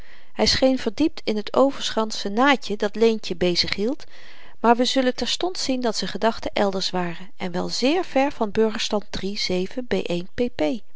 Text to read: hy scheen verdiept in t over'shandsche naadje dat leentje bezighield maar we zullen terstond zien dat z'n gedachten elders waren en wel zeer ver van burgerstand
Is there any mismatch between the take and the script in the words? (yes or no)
no